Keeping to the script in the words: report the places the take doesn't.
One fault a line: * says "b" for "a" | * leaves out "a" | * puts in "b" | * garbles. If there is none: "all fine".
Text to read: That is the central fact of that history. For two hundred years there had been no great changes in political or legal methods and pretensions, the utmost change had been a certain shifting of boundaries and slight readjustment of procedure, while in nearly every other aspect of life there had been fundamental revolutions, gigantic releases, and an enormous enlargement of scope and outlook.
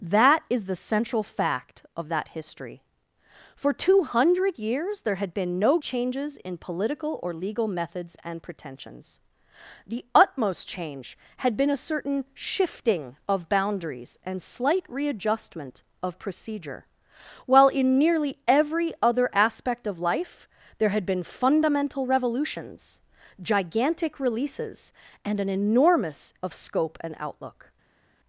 * leaves out "great"
* leaves out "enlargement"